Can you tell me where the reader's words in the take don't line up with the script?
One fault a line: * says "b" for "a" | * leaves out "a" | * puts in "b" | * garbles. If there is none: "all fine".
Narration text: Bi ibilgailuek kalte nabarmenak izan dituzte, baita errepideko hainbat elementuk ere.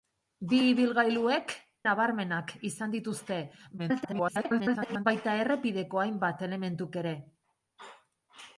* leaves out "kalte"
* garbles